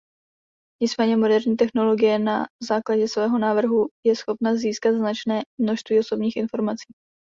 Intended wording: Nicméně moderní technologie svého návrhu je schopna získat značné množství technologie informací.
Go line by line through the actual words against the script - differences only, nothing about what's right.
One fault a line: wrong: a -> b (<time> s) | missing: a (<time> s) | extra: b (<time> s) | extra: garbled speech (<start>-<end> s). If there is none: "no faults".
extra: na základě (2.2 s)
wrong: technologie -> osobních (6.0 s)